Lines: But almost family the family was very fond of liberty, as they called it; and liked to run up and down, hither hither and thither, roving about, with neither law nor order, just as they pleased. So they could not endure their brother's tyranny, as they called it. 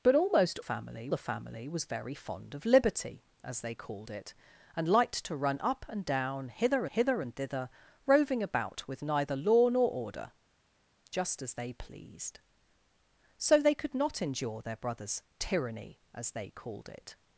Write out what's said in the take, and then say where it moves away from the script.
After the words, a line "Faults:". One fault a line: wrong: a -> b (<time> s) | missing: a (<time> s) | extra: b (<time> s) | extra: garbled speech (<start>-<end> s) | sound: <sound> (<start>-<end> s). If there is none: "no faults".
But almost family the family was very fond of liberty, as they called it; and liked to run up and down, hither hither and thither, roving about, with neither law nor order, just as they pleased. So they could not endure their brother's tyranny, as they called it.
Faults:
no faults